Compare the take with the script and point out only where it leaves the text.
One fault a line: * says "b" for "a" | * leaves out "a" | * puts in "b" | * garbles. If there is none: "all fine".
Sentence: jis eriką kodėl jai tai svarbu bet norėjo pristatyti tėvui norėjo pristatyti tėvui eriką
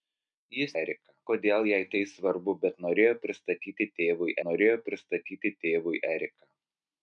all fine